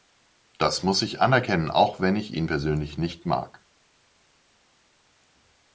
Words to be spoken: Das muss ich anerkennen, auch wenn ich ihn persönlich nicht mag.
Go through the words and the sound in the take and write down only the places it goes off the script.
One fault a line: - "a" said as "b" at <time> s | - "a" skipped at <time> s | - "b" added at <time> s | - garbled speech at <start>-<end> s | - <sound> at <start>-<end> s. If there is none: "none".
none